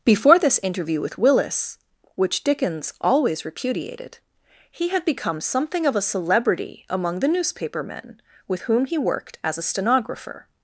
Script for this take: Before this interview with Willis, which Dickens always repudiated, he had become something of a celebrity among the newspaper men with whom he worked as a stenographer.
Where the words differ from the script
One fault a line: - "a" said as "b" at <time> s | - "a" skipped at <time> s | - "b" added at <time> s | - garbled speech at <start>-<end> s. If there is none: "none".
none